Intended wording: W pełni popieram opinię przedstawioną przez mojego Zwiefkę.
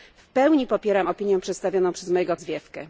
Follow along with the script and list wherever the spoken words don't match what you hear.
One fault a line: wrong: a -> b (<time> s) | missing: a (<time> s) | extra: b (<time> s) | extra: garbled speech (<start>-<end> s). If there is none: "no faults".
no faults